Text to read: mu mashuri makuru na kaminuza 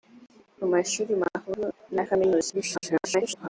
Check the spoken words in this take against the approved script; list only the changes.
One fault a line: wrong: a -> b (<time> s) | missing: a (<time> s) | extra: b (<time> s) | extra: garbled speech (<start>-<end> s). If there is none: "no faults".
extra: garbled speech (2.5-3.5 s)